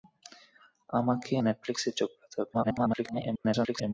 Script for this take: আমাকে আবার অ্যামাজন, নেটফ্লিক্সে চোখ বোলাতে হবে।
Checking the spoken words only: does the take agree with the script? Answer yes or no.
no